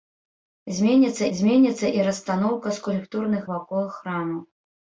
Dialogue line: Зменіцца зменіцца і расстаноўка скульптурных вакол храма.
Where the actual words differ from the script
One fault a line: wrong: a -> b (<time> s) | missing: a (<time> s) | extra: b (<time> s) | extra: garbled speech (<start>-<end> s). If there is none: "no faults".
no faults